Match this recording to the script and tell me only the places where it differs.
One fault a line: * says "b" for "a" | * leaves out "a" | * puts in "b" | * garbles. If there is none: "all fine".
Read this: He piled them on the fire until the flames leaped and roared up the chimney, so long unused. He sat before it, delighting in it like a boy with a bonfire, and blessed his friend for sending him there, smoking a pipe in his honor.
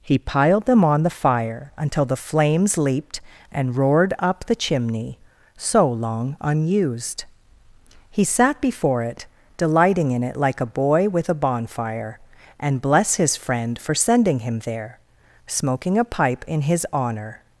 * says "bless" for "blessed"